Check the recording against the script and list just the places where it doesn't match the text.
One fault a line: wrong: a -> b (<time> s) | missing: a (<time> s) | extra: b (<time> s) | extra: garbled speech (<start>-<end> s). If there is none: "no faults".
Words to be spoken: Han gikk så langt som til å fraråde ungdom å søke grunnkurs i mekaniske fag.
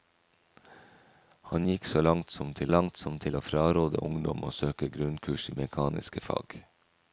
extra: langt som til (2.7 s)